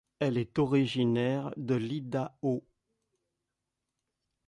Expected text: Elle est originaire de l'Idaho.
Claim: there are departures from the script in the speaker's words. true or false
false